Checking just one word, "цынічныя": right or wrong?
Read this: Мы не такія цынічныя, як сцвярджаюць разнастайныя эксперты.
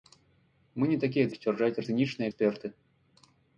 wrong